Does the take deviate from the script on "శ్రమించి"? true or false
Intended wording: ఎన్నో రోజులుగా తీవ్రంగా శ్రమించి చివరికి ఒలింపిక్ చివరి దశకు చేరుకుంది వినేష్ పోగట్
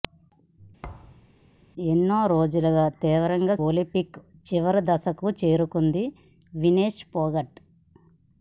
true